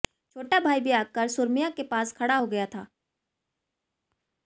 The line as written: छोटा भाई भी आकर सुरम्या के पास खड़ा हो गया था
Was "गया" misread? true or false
false